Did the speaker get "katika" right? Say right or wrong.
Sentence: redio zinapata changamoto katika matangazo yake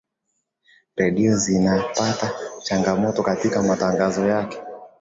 right